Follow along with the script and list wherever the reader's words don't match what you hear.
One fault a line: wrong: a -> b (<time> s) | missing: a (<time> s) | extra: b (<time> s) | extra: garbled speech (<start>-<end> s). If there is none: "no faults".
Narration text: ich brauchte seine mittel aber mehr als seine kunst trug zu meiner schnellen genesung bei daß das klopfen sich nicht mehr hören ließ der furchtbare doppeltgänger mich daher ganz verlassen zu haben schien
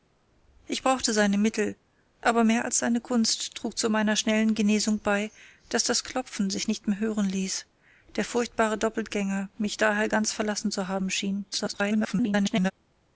extra: garbled speech (11.5-12.7 s)